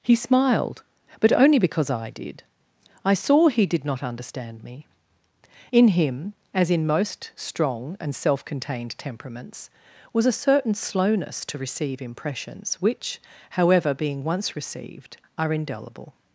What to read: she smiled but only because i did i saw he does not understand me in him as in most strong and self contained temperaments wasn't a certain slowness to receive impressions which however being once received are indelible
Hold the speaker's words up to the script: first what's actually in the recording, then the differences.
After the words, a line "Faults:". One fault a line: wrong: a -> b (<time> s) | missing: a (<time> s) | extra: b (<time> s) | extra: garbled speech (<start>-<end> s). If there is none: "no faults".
he smiled but only because i did i saw he did not understand me in him as in most strong and self contained temperaments was a certain slowness to receive impressions which however being once received are indelible
Faults:
wrong: she -> he (0.0 s)
wrong: does -> did (3.6 s)
wrong: wasn't -> was (10.1 s)